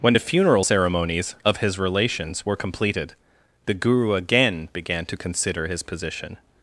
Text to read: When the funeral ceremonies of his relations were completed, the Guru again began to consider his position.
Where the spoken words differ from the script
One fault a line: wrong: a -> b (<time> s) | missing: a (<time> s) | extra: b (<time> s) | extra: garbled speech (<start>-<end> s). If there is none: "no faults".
no faults